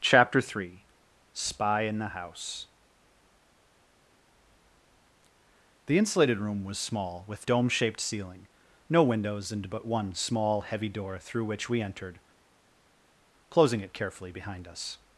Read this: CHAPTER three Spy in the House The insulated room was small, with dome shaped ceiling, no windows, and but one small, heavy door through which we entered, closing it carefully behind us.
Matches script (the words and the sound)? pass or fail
pass